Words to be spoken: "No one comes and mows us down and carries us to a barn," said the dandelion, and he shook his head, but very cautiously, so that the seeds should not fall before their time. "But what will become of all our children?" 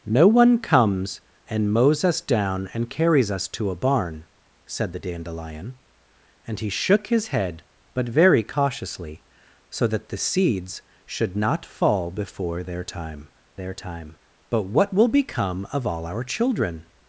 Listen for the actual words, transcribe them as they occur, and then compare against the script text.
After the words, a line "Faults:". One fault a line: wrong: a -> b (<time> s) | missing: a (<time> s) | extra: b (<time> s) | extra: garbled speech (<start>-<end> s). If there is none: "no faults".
"No one comes and mows us down and carries us to a barn," said the dandelion, and he shook his head, but very cautiously, so that the seeds should not fall before their time their time. "But what will become of all our children?"
Faults:
extra: their time (13.5 s)